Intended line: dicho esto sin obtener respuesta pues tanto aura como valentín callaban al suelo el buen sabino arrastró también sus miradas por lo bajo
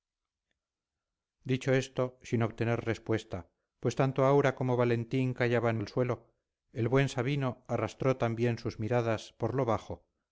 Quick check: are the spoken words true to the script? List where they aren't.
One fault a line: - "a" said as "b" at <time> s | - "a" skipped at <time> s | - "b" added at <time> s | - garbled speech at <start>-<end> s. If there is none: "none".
none